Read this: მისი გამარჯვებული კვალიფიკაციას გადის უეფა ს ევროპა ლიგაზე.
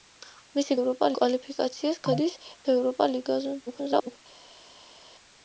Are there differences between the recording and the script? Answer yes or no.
yes